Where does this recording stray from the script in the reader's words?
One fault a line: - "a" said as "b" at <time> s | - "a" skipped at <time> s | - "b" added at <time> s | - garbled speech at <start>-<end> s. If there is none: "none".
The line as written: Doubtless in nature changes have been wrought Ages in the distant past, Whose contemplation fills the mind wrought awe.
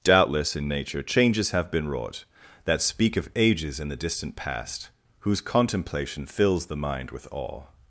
- "That speak of" added at 2.6 s
- "wrought" said as "with" at 7.1 s